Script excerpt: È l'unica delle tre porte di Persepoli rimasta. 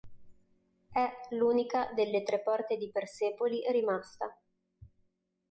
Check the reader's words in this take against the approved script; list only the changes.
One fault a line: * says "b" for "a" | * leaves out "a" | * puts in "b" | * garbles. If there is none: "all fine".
all fine